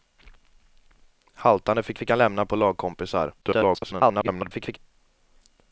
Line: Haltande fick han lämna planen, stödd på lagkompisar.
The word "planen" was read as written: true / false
false